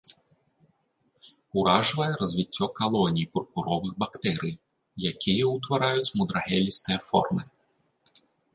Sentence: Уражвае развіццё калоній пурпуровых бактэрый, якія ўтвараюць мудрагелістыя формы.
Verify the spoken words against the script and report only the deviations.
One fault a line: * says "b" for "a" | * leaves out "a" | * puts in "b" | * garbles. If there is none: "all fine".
all fine